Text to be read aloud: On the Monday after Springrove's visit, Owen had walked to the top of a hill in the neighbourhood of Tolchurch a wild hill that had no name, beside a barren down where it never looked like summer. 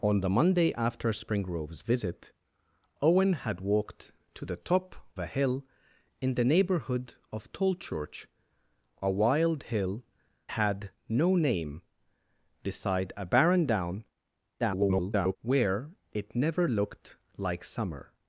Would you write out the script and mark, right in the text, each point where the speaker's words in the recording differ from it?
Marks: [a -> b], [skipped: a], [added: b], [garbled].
On the Monday after Springrove's visit, Owen had walked to the top [skipped: of] a hill in the neighbourhood of Tolchurch a wild hill [skipped: that] had no name, beside a barren down [garbled] where it never looked like summer.